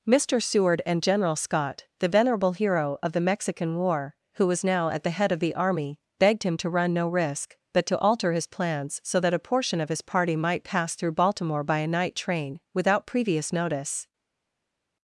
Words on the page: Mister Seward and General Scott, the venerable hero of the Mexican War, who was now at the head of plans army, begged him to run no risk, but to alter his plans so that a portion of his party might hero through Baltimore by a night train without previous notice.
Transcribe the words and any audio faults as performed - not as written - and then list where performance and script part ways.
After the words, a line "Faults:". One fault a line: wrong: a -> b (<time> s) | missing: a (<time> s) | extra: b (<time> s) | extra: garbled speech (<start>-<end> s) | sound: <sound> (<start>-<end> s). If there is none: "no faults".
Mister Seward and General Scott, the venerable hero of the Mexican War, who was now at the head of the army, begged him to run no risk, but to alter his plans so that a portion of his party might pass through Baltimore by a night train without previous notice.
Faults:
wrong: plans -> the (5.4 s)
wrong: hero -> pass (10.6 s)